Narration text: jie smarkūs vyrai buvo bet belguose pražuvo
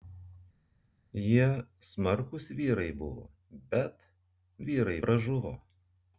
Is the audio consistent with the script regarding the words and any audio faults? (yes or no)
no